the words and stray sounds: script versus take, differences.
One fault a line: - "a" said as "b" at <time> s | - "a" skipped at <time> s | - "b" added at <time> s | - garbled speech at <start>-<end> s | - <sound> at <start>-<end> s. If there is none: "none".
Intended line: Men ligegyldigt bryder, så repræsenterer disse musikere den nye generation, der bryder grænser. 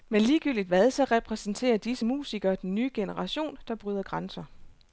- "bryder" said as "hvad" at 0.7 s